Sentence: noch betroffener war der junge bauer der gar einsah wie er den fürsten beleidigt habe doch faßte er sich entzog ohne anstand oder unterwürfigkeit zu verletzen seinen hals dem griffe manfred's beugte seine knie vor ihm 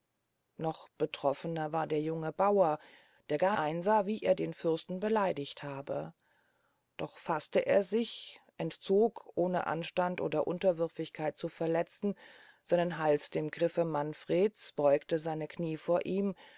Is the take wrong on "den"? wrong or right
right